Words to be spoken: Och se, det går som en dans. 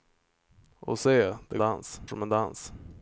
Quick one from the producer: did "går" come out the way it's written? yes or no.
no